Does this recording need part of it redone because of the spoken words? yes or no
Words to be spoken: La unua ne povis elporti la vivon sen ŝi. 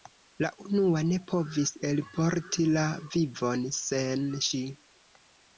no